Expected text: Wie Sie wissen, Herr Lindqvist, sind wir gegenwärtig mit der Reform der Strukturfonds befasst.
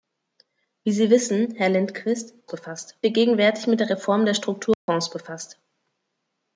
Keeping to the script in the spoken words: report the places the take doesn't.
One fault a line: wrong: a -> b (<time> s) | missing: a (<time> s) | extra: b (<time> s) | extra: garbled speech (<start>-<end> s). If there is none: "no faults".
wrong: sind -> befasst (2.5 s)